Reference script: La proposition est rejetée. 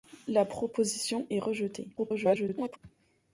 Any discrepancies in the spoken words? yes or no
yes